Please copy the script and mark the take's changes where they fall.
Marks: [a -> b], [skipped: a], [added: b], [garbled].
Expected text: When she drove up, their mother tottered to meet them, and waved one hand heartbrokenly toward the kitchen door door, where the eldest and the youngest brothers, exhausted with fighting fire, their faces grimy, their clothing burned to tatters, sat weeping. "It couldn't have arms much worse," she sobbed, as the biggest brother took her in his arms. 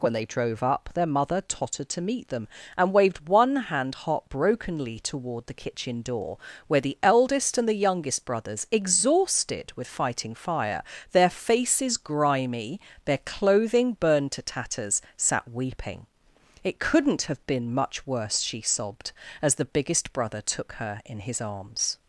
When [she -> they] drove up, their mother tottered to meet them, and waved one hand heartbrokenly toward the kitchen door [skipped: door,] where the eldest and the youngest brothers, exhausted with fighting fire, their faces grimy, their clothing burned to tatters, sat weeping. "It couldn't have [arms -> been] much worse," she sobbed, as the biggest brother took her in his arms.